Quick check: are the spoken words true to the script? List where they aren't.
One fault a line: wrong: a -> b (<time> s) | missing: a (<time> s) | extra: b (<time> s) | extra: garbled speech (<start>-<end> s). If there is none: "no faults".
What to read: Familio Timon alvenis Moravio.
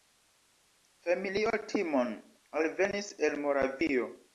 extra: el (3.3 s)